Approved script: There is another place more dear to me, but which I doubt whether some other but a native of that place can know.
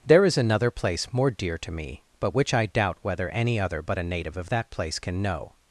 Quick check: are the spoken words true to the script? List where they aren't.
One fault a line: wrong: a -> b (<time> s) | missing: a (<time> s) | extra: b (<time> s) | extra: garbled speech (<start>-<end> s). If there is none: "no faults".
wrong: some -> any (3.3 s)